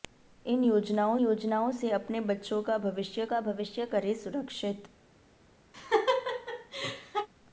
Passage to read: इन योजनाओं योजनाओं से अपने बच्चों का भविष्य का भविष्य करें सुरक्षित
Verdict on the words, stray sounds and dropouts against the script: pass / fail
fail